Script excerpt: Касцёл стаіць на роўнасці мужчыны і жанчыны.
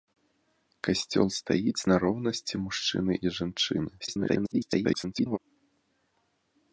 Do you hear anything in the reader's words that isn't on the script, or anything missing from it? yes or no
yes